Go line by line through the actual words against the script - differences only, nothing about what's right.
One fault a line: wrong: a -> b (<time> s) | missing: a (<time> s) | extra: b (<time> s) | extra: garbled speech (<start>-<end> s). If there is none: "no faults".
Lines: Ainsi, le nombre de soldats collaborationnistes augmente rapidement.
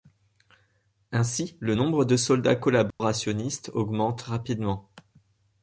no faults